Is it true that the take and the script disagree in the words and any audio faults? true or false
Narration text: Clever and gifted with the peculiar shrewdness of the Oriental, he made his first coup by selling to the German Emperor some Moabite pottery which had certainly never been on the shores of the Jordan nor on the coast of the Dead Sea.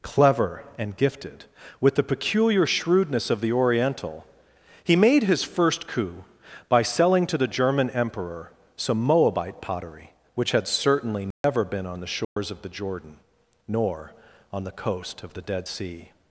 true